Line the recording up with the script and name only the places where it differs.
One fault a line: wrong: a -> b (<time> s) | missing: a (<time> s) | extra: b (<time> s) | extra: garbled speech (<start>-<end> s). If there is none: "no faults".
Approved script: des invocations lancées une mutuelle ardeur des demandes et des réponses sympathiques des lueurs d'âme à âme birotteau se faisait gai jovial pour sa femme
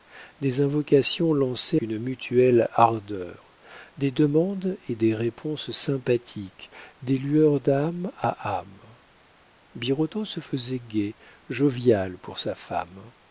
no faults